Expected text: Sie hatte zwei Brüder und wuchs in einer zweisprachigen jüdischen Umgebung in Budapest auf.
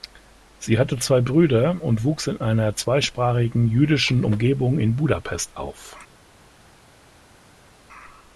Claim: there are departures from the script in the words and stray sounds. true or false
false